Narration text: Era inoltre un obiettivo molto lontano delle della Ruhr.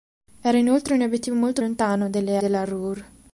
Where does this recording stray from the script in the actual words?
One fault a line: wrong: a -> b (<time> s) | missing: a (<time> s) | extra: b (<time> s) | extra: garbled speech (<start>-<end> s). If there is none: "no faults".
no faults